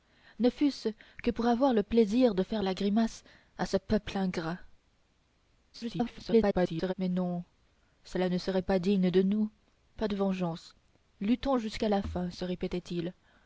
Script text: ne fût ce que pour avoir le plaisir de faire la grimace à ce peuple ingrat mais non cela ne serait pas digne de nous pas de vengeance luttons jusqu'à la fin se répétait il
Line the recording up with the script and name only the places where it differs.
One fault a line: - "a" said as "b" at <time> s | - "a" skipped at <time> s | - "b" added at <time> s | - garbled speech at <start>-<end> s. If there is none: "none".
- garbled speech at 5.7-6.9 s